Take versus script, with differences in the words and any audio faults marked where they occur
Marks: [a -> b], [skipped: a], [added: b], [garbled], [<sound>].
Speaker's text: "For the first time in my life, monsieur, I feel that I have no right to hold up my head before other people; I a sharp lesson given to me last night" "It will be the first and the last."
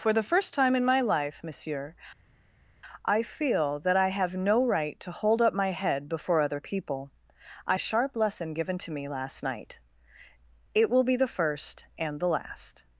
"For the first time in my life, monsieur, I feel that I have no right to hold up my head before other people; I a sharp lesson given to me last night" "It will be the first and the last."